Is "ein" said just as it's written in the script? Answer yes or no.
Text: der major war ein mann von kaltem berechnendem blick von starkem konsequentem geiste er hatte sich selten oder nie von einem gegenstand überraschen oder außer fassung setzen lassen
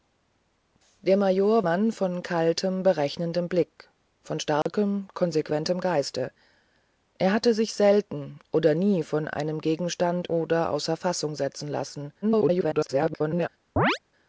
no